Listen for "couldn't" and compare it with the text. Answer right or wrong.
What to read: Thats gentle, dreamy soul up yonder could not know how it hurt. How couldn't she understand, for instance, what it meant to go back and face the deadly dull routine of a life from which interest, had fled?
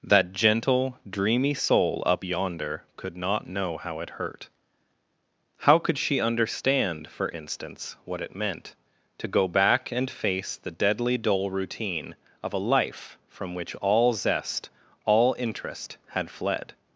wrong